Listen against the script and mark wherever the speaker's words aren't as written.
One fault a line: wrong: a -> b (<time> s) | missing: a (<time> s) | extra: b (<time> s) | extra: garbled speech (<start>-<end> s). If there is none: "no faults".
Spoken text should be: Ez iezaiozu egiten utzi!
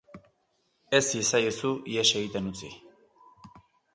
extra: ihes (1.9 s)